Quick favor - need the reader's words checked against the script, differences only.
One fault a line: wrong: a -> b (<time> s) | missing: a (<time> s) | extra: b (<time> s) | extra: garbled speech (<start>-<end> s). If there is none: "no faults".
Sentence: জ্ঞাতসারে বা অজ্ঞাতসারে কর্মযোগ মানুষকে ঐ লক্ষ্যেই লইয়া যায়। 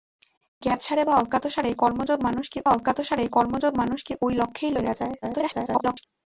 extra: অজ্ঞাতসারে কর্মযোগ মানুষকে (2.7 s)
extra: garbled speech (5.2-6.0 s)